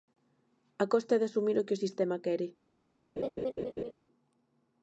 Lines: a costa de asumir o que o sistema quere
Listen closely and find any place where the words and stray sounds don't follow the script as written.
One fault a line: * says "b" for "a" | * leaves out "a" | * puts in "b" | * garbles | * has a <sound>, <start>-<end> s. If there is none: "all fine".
* has a laugh, 3.2-3.9 s